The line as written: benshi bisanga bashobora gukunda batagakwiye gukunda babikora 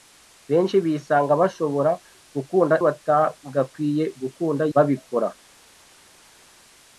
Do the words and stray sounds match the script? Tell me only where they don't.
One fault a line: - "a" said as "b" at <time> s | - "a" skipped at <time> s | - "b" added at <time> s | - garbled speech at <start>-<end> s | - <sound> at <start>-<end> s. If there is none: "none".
none